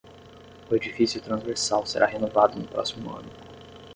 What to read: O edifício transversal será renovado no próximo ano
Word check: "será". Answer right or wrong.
right